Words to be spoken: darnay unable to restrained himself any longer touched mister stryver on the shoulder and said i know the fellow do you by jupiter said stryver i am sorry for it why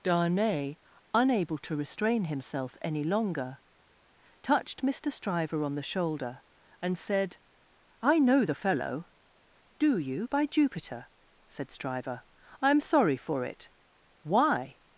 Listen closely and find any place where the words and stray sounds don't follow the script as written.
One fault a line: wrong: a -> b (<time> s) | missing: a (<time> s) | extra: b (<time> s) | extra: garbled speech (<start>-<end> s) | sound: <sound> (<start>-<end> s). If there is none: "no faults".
wrong: restrained -> restrain (1.8 s)